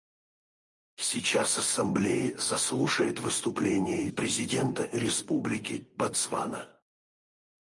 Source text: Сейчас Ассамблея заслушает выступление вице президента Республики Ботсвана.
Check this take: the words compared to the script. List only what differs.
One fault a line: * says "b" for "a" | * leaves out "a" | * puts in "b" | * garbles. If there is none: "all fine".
* leaves out "вице"